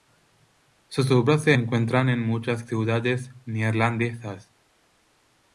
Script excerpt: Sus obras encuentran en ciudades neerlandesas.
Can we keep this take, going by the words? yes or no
no